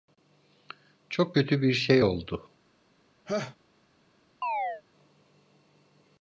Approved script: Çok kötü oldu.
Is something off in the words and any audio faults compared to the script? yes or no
yes